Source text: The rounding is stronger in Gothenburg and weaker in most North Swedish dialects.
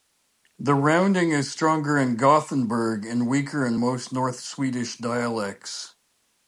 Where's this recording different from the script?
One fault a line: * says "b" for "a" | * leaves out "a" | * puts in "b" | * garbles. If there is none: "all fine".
all fine